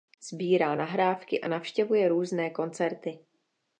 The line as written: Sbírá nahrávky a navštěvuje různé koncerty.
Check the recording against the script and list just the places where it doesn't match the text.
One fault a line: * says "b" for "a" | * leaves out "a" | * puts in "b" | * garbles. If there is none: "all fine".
all fine